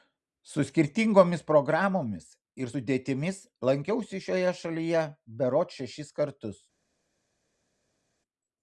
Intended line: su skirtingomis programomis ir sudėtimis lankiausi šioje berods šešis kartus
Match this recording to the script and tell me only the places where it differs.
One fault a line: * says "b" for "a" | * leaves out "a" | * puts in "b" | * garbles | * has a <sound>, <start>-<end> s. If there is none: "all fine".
* puts in "šalyje"